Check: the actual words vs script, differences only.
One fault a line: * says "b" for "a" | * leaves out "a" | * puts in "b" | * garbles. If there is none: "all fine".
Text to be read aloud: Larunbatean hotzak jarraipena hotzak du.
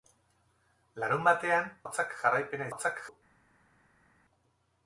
all fine